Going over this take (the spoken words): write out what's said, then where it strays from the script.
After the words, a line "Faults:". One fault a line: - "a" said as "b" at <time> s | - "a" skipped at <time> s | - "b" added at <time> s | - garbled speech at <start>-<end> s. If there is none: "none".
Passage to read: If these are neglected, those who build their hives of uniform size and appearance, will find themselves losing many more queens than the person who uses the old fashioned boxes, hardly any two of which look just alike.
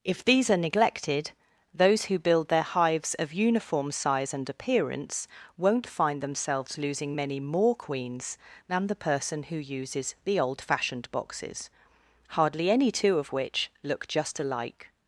If these are neglected, those who build their hives of uniform size and appearance, won't find themselves losing many more queens than the person who uses the old fashioned boxes, hardly any two of which look just alike.
Faults:
- "will" said as "won't" at 5.6 s